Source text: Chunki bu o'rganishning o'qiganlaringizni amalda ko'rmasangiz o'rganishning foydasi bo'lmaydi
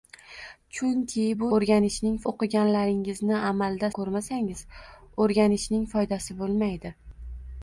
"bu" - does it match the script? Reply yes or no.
yes